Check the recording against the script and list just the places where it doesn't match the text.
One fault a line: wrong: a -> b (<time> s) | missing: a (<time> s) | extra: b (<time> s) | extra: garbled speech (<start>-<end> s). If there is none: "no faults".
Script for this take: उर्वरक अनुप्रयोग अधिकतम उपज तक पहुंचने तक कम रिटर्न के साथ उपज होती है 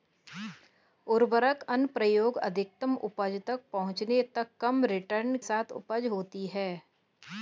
missing: के (5.4 s)